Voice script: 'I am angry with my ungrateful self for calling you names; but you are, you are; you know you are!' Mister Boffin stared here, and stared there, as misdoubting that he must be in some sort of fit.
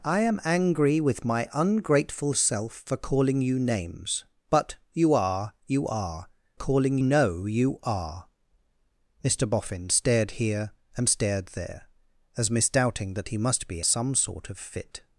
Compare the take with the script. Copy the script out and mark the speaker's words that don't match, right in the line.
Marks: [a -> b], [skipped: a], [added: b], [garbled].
'I am angry with my ungrateful self for calling you names; but you are, you are; [you -> calling] know you are!' Mister Boffin stared here, and stared there, as misdoubting that he must be [skipped: in] some sort of fit.